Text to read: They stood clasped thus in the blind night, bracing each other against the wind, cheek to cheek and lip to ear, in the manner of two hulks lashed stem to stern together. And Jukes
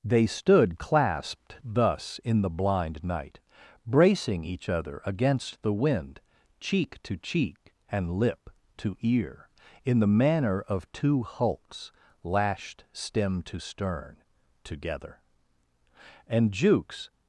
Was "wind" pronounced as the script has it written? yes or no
yes